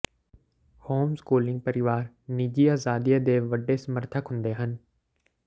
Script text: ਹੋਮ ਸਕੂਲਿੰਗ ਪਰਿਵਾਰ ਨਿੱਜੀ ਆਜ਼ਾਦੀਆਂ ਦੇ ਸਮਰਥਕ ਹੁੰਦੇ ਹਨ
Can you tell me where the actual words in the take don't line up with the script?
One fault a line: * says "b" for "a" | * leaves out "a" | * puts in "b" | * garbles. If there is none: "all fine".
* puts in "ਵੱਡੇ"